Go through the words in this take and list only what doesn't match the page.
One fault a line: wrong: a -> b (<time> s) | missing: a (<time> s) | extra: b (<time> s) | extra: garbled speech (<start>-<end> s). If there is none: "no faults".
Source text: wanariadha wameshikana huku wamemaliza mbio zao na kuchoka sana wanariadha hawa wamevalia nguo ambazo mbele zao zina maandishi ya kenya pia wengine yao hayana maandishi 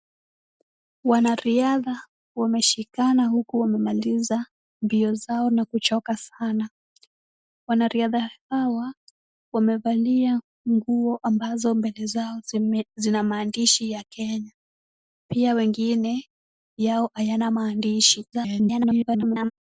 extra: garbled speech (18.3-19.5 s)